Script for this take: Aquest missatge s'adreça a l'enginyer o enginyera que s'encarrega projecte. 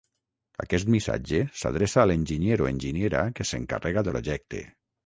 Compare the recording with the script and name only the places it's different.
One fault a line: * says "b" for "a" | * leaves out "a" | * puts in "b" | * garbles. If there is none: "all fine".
all fine